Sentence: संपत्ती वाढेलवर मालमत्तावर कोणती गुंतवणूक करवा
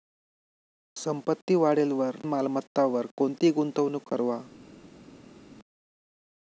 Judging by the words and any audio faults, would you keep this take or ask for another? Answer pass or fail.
pass